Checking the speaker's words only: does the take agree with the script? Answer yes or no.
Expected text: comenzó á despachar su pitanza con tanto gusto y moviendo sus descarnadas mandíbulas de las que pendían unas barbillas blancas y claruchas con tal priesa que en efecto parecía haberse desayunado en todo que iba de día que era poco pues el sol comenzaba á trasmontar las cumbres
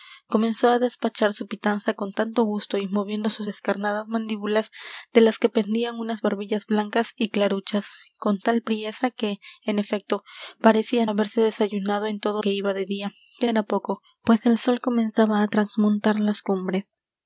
yes